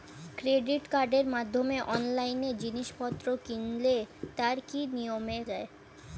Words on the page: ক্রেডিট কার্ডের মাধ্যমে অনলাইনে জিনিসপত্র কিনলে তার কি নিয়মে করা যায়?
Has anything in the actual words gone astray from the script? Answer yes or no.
yes